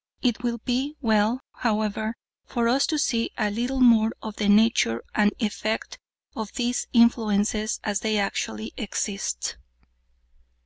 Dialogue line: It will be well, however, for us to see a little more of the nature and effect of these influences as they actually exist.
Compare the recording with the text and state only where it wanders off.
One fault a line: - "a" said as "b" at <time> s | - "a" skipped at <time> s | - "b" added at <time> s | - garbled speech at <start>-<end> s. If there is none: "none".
none